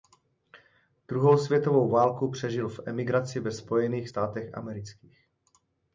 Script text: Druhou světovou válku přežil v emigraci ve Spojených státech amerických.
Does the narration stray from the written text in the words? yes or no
no